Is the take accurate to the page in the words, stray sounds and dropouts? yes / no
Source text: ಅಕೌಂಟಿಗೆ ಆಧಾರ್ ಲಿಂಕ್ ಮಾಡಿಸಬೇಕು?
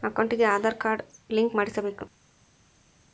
no